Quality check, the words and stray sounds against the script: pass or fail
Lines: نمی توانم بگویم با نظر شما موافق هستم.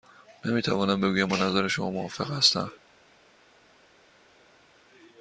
pass